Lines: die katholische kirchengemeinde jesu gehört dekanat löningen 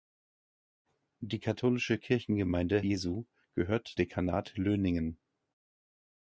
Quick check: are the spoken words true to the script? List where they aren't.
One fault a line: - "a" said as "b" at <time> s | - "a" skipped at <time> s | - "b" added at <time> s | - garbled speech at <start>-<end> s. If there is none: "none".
none